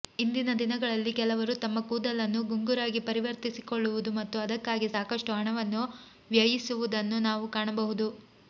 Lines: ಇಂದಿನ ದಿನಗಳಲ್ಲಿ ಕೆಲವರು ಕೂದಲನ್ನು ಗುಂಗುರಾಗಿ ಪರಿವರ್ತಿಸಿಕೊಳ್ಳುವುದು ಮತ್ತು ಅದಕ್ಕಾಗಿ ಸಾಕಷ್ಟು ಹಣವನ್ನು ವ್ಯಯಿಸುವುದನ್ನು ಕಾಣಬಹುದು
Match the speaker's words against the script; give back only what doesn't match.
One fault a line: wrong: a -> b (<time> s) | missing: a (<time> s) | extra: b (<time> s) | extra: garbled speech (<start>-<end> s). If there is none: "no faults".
extra: ತಮ್ಮ (1.6 s)
extra: ನಾವು (7.2 s)